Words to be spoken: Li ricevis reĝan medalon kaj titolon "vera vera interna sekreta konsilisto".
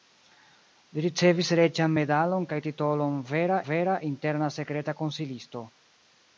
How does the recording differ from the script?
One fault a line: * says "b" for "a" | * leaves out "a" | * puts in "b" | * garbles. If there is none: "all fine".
all fine